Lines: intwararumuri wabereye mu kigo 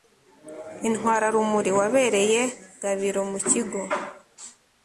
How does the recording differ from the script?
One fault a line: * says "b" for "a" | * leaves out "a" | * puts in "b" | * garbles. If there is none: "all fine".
* puts in "gabiro"